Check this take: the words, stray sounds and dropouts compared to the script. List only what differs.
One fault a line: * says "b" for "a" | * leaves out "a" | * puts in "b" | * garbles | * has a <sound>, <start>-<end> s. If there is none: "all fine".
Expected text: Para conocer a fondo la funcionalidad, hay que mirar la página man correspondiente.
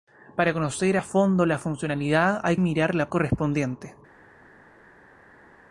* leaves out "que"
* leaves out "página man"